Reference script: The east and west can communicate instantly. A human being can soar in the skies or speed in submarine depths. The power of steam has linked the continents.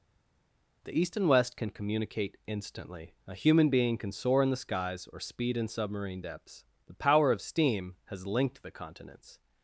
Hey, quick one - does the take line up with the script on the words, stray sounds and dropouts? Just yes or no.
yes